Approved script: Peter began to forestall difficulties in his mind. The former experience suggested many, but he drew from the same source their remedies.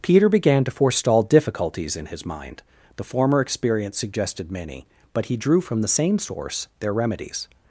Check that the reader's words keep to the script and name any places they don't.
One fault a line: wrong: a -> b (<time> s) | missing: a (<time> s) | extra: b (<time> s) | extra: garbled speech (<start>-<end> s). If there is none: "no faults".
no faults